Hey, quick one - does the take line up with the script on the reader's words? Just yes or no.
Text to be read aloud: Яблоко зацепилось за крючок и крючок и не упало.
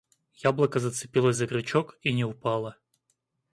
no